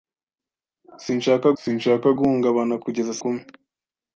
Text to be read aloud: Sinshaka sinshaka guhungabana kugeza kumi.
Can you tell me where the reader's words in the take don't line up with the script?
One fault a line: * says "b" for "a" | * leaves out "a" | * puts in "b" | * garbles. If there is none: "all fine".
all fine